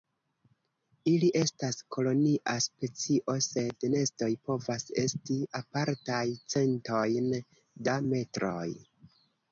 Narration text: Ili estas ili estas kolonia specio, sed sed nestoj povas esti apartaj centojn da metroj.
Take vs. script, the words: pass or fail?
fail